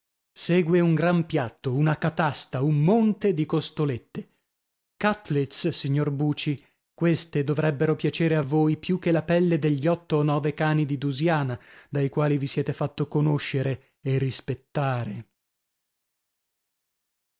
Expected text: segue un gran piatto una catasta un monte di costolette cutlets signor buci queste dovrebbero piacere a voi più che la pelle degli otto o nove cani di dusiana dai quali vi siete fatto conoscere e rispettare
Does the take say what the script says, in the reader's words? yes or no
yes